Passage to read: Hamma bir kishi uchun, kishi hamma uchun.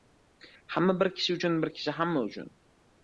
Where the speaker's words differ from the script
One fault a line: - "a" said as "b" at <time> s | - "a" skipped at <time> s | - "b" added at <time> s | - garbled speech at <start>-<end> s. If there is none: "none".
- "bir" added at 1.6 s